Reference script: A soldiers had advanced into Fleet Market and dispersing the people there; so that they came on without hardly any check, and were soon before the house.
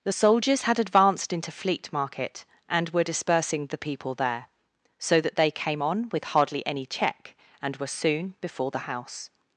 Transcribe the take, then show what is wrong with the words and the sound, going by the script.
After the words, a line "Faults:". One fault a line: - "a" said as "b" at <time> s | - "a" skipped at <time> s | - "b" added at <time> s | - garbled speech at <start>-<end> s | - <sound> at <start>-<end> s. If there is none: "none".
The soldiers had advanced into Fleet Market and were dispersing the people there; so that they came on with hardly any check, and were soon before the house.
Faults:
- "A" said as "The" at 0.0 s
- "were" added at 2.9 s
- "without" said as "with" at 6.1 s